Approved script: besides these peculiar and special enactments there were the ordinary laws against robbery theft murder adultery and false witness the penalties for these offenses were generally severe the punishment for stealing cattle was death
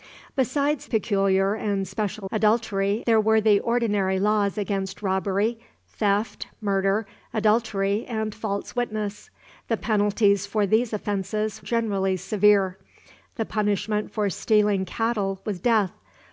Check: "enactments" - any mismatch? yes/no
yes